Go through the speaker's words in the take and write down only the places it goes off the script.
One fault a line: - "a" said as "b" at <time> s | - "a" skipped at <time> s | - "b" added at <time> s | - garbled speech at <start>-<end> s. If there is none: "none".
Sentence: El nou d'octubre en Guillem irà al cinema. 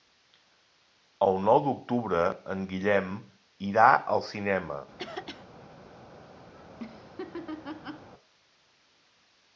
none